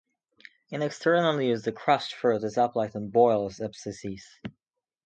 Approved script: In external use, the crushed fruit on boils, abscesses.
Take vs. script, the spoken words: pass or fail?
fail